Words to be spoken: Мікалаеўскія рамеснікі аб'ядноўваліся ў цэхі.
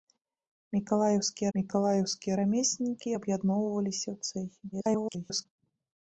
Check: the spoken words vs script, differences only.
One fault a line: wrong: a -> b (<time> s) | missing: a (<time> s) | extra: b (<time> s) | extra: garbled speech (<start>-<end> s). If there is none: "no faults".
extra: мікалаеўскія (1.6 s)
extra: garbled speech (4.7-5.5 s)